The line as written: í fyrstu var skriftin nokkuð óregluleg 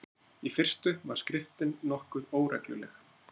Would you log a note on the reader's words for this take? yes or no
no